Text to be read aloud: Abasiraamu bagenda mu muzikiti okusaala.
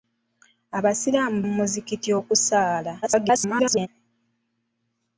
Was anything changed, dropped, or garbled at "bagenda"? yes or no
yes